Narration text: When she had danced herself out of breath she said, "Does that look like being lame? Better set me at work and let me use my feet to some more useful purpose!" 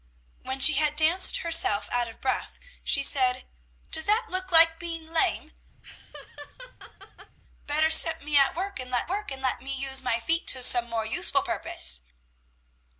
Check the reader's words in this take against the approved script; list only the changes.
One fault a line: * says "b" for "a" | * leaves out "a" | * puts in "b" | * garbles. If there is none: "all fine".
* puts in "work and let"